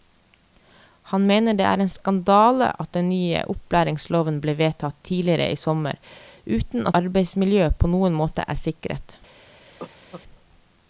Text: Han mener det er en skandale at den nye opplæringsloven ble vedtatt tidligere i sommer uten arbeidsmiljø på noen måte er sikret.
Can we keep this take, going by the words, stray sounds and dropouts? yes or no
no